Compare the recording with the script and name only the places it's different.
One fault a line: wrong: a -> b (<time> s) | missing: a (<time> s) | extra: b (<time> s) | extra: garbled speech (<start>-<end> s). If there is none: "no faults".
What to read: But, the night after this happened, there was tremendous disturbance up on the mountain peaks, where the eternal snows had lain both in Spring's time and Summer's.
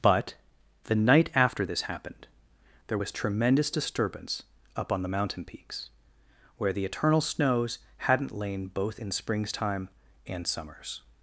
wrong: had -> hadn't (8.0 s)